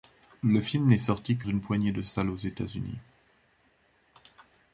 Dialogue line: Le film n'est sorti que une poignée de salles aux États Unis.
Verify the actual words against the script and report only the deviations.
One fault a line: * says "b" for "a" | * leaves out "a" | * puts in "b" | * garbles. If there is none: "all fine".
all fine